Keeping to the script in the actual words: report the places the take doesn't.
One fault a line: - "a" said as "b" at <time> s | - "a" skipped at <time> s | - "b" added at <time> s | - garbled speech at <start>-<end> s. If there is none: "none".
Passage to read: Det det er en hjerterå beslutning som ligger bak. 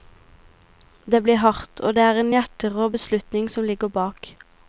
- "blir hardt og" added at 1.2 s